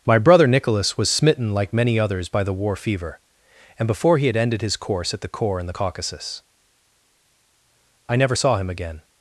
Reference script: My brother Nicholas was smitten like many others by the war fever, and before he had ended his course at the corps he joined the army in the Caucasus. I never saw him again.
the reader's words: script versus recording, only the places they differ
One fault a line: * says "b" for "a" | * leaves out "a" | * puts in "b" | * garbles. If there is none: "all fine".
* leaves out "he joined the army"